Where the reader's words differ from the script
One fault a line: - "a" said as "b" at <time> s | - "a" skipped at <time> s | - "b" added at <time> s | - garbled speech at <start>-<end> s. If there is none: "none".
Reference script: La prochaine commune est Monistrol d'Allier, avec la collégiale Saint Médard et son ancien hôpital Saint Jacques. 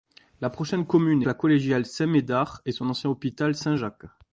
- "Monistrol d'Allier avec" skipped at 1.3 s